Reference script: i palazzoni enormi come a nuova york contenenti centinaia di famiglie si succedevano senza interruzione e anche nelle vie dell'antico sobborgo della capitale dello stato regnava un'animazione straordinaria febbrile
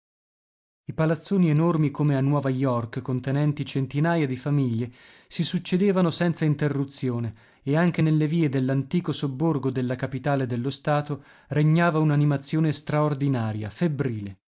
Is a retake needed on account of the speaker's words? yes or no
no